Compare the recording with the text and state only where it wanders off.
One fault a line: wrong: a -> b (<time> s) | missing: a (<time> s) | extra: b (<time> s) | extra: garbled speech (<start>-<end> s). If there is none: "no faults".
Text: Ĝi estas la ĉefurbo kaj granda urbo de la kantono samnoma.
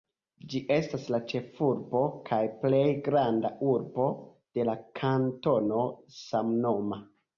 extra: plej (2.6 s)